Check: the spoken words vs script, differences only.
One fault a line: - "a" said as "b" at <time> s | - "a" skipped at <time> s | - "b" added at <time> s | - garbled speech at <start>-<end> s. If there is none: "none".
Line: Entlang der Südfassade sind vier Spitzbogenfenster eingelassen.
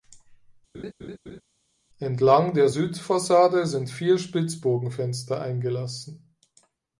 none